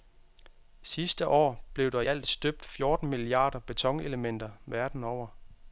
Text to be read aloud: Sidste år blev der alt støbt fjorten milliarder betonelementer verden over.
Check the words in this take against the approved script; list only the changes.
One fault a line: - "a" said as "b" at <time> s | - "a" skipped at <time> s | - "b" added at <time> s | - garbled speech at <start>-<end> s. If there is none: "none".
none